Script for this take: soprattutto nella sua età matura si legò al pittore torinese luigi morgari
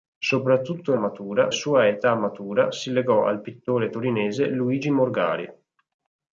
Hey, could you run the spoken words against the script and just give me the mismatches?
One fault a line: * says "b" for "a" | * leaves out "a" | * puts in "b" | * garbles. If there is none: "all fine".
* says "matura" for "nella"